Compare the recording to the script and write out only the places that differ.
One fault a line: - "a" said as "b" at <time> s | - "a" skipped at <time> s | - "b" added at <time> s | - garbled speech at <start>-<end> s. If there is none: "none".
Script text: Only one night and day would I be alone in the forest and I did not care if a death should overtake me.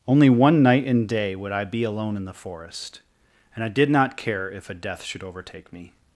none